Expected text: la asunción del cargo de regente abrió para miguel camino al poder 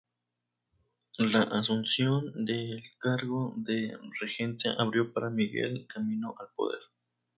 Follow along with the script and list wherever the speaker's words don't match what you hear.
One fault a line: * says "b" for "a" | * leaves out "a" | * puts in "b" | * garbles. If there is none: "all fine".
all fine